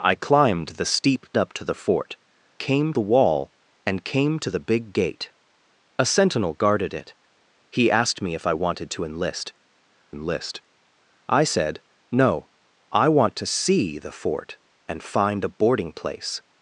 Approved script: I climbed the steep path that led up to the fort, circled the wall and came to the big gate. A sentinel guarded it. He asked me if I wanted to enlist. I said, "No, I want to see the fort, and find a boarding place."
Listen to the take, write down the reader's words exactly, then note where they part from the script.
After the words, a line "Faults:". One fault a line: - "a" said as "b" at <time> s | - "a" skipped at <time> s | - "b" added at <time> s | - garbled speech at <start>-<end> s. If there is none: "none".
I climbed the steep up to the fort, came the wall and came to the big gate. A sentinel guarded it. He asked me if I wanted to enlist enlist. I said, "No, I want to see the fort, and find a boarding place."
Faults:
- "path that led" skipped at 1.3 s
- "circled" said as "came" at 2.6 s
- "enlist" added at 10.1 s